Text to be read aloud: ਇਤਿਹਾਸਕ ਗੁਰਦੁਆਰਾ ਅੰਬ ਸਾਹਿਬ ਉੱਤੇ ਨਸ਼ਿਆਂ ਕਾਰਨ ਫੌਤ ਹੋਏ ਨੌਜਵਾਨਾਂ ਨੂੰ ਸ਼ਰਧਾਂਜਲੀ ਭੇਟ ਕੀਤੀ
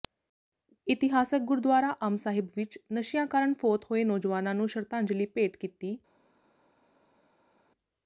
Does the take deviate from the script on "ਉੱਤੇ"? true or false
true